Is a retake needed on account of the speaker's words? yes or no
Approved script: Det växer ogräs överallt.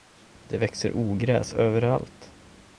no